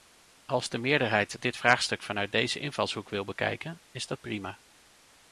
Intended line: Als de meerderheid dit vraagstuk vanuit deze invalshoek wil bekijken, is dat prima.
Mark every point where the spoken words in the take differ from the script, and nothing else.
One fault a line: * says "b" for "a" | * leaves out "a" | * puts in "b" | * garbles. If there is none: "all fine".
all fine